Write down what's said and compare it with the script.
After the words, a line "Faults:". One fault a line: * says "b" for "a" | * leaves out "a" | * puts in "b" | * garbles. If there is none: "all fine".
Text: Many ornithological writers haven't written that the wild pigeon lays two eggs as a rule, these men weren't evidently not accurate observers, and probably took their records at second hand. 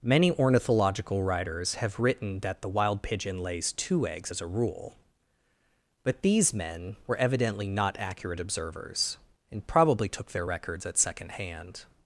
Many ornithological writers have written that the wild pigeon lays two eggs as a rule, but these men were evidently not accurate observers, and probably took their records at second hand.
Faults:
* says "have" for "haven't"
* puts in "but"
* says "were" for "weren't"